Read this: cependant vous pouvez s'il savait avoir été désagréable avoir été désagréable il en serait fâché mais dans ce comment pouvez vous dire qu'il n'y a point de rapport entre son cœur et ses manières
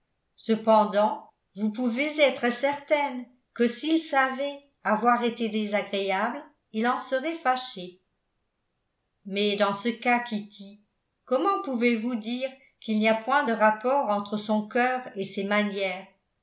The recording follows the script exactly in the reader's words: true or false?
false